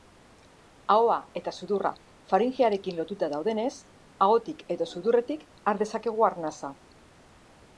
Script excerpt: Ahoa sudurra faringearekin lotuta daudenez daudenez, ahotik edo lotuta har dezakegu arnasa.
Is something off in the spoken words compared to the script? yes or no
yes